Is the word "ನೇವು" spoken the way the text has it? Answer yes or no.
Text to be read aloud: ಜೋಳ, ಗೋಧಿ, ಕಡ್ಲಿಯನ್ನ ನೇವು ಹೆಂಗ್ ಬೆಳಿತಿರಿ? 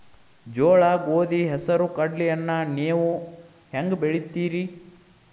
yes